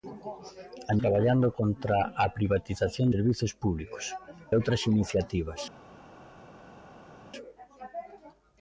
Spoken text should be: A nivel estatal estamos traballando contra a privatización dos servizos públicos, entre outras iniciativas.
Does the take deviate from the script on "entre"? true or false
true